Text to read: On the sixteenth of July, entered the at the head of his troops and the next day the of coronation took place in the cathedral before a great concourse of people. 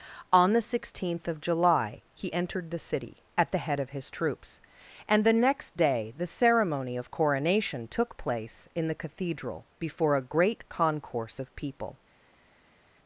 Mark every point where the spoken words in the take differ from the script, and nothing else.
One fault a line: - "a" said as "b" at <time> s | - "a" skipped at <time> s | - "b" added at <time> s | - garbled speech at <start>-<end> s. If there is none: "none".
- "he" added at 2.1 s
- "city" added at 2.8 s
- "ceremony" added at 6.3 s